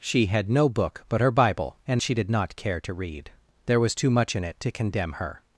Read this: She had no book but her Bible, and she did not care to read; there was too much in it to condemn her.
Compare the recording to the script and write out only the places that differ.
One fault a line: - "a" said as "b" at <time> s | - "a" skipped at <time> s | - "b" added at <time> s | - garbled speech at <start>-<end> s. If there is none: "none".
none